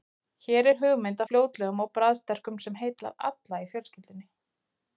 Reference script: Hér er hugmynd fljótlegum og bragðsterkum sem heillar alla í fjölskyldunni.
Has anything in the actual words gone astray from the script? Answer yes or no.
no